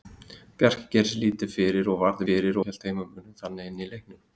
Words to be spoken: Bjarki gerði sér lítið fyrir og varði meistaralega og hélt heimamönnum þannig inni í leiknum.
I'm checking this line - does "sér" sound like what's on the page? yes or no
yes